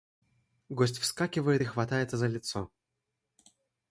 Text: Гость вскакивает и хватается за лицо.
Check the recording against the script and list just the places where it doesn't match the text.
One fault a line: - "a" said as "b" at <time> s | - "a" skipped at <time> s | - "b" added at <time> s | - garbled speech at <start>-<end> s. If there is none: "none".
none